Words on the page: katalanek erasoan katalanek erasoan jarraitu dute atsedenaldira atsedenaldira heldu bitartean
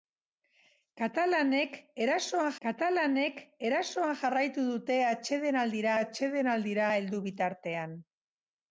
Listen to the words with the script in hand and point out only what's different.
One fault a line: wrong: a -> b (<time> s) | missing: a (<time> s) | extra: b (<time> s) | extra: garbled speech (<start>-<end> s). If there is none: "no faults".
no faults